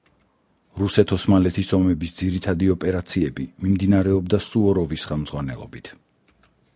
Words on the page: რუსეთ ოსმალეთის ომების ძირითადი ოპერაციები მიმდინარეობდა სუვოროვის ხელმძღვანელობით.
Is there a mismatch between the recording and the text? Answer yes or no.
no